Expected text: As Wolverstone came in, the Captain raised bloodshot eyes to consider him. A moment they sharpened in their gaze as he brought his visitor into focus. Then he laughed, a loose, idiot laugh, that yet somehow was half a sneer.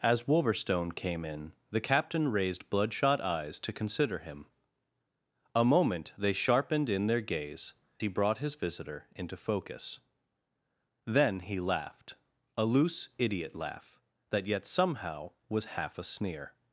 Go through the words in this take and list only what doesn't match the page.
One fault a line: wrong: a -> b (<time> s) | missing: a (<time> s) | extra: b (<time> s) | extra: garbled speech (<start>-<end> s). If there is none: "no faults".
missing: as (7.7 s)